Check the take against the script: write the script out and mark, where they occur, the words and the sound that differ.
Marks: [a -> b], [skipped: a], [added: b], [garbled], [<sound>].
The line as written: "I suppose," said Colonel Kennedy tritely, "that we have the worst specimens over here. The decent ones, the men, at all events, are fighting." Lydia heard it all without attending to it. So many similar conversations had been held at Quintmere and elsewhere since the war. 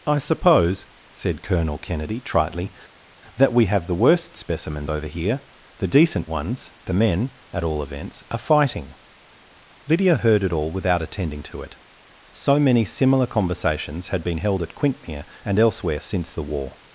"I suppose," said Colonel Kennedy tritely, "that we have the worst specimens over here. The decent ones, the men, at all events, are fighting." Lydia heard it all without attending to it. So many similar conversations had been held at Quintmere and elsewhere since the war.